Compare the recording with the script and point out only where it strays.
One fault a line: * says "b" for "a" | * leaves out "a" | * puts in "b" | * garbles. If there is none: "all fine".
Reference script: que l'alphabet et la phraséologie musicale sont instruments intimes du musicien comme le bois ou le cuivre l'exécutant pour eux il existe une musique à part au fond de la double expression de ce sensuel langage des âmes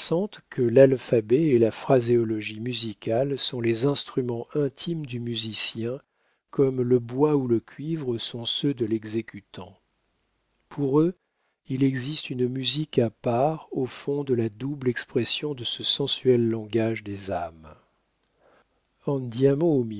* puts in "les"
* puts in "sont ceux de"